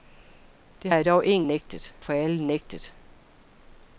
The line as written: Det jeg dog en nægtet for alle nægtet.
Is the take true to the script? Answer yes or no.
yes